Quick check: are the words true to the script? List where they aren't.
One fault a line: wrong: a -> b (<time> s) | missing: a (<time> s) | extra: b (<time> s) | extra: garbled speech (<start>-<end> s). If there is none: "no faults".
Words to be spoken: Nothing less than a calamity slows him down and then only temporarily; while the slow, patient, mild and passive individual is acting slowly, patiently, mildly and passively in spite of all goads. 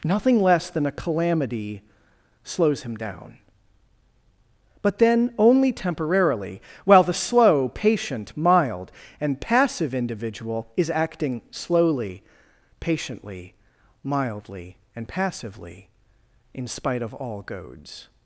wrong: and -> but (4.8 s)